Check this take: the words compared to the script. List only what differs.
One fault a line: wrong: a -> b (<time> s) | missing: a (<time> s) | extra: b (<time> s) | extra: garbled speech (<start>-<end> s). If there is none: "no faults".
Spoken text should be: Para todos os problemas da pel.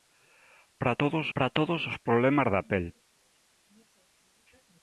extra: para todos (1.3 s)